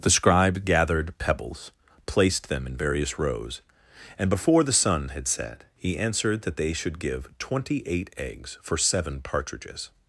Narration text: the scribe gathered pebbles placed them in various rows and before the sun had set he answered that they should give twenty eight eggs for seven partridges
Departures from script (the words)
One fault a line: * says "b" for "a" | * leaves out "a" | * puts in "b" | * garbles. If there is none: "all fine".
all fine